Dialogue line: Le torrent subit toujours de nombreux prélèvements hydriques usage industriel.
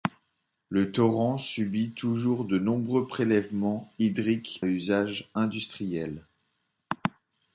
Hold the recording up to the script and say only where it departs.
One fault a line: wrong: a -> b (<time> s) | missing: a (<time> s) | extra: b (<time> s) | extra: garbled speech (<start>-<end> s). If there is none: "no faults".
no faults